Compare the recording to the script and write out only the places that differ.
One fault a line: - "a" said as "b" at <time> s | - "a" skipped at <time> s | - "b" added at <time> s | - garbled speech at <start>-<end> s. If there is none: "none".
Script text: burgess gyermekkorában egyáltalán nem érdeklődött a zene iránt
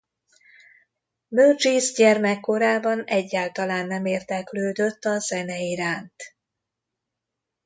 none